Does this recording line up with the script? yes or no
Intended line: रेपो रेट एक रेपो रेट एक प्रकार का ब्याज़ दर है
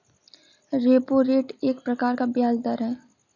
no